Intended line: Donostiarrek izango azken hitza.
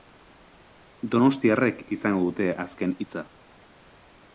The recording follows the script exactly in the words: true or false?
false